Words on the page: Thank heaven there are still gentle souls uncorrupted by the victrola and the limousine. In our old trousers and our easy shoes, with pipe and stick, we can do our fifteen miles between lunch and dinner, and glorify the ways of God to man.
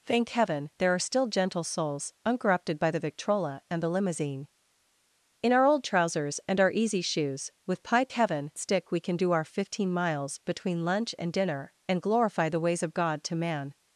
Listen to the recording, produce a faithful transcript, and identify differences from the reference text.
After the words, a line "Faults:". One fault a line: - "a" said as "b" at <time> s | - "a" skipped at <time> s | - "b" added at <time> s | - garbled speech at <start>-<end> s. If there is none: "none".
Thank heaven there are still gentle souls uncorrupted by the victrola and the limousine. In our old trousers and our easy shoes, with pipe heaven stick, we can do our fifteen miles between lunch and dinner, and glorify the ways of God to man.
Faults:
- "and" said as "heaven" at 8.1 s